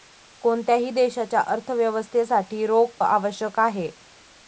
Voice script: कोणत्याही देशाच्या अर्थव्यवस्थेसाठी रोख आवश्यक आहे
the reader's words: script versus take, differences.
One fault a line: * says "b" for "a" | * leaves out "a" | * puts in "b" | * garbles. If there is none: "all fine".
all fine